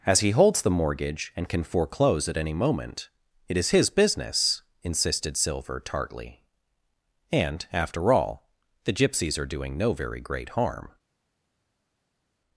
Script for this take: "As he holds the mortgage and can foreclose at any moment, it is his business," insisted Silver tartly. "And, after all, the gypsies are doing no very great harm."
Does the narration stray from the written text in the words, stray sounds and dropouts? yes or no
no